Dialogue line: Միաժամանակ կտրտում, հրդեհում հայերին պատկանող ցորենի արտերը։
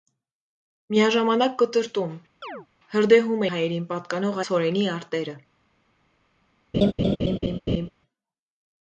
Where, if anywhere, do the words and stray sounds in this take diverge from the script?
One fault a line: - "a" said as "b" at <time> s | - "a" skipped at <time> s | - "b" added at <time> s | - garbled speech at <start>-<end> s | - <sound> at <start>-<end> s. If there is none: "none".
- chirp at 2.4-2.7 s
- laugh at 6.7-7.9 s